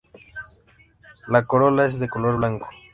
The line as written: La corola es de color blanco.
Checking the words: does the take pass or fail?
pass